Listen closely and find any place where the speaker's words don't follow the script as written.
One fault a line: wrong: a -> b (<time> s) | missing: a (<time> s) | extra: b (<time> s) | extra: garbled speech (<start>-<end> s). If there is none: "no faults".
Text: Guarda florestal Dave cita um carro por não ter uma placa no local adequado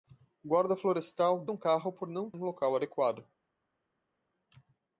missing: Dave cita (1.4 s)
missing: ter uma placa (2.3 s)